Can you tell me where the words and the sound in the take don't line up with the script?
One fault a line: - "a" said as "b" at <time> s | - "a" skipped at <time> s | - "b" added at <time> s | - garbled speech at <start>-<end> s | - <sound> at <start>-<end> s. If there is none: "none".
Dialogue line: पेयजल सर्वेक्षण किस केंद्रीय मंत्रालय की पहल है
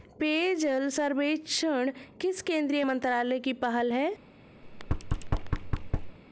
- thud at 4.6-6.2 s